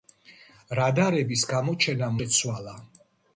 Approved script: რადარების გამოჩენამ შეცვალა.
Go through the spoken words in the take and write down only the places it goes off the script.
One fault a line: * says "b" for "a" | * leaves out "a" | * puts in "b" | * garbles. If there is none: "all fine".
all fine